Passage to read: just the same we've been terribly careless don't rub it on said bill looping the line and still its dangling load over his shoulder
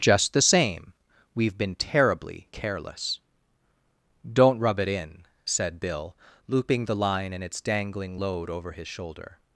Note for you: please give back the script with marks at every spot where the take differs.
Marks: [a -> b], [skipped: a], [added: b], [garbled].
just the same we've been terribly careless don't rub it [on -> in] said bill looping the line and [skipped: still] its dangling load over his shoulder